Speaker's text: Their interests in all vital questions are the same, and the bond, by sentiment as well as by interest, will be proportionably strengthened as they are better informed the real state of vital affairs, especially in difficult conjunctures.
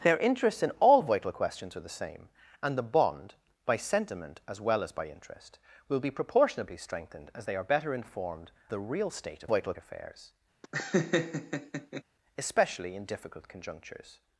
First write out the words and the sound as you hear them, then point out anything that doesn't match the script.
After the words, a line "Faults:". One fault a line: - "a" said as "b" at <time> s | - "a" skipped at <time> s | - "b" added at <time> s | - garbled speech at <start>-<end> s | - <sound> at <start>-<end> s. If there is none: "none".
Their interests in all vital questions are the same, and the bond, by sentiment as well as by interest, will be proportionably strengthened as they are better informed the real state of vital affairs, especially in difficult conjunctures.
Faults:
- laugh at 10.6-12.0 s